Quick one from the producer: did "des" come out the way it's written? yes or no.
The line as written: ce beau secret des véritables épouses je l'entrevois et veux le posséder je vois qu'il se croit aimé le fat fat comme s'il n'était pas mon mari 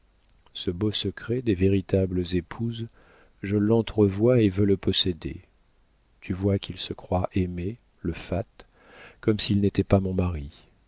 yes